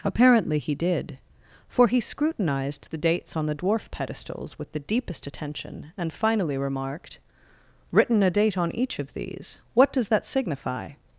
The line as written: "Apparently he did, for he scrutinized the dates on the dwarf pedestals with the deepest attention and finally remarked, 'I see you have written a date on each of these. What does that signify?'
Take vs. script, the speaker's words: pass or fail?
fail